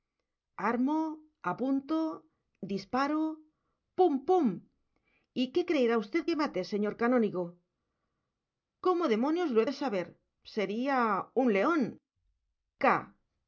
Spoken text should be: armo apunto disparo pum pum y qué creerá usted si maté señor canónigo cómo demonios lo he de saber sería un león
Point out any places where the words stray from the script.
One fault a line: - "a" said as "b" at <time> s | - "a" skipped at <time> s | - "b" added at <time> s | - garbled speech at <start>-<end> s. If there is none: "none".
- "si" said as "que" at 6.3 s